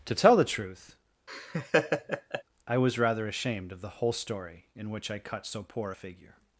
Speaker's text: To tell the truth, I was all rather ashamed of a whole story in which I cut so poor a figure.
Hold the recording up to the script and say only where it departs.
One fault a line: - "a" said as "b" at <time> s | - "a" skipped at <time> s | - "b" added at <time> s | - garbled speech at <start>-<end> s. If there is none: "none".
- "all" skipped at 3.0 s
- "a" said as "the" at 3.8 s